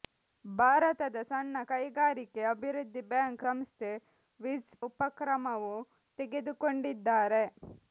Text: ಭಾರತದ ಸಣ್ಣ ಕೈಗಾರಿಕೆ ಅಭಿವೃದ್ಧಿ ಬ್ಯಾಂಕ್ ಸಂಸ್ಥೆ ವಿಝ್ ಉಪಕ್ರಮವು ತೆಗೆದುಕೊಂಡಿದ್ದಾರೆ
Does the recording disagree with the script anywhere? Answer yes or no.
no